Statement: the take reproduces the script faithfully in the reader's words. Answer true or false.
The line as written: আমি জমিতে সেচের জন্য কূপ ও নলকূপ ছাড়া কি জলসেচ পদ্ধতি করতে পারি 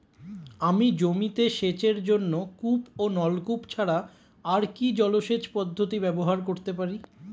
false